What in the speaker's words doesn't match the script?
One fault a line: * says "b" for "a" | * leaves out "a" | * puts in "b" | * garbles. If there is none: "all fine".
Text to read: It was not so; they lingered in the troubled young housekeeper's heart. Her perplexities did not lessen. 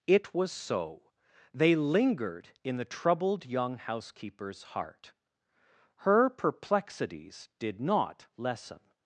* leaves out "not"